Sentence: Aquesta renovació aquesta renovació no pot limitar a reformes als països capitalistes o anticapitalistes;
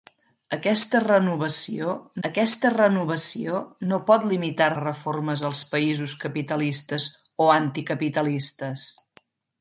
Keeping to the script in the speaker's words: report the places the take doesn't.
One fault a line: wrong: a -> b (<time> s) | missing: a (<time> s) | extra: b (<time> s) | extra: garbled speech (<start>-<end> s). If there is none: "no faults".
no faults